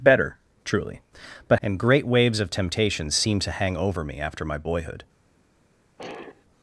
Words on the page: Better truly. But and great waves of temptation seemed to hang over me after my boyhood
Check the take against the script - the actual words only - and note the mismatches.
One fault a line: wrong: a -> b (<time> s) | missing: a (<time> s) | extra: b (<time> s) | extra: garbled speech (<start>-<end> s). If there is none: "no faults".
no faults